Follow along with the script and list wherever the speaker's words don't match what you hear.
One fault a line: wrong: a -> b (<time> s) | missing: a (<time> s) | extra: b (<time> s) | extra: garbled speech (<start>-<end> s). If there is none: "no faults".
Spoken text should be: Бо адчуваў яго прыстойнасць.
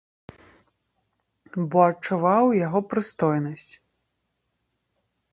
no faults